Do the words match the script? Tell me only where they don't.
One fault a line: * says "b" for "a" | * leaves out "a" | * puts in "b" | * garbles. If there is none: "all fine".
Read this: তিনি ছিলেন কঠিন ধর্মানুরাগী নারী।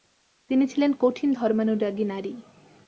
all fine